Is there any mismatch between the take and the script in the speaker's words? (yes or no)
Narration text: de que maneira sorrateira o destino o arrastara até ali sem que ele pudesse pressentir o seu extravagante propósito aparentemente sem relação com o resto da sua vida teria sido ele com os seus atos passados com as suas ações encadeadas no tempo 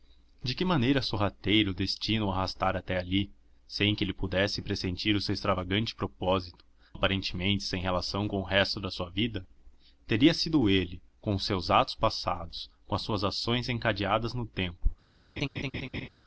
no